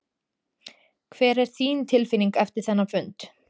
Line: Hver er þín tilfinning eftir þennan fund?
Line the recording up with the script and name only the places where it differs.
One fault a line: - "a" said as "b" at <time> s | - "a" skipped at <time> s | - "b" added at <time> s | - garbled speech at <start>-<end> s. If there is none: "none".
none